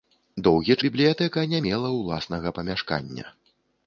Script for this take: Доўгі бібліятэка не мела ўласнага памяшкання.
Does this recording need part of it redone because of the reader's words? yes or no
no